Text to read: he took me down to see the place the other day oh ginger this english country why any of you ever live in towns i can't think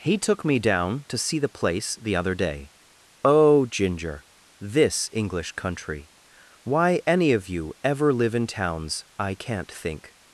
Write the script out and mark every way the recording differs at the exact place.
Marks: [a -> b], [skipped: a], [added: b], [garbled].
he took me down to see the place the other day oh ginger this english country why any of you ever live in towns i can't think